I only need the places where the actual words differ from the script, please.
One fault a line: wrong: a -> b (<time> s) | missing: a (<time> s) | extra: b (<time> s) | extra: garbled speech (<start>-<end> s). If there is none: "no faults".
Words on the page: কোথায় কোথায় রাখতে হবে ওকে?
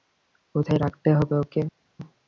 missing: কোথায় (0.8 s)